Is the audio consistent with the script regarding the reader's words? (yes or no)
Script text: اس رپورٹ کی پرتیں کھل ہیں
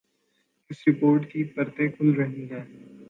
no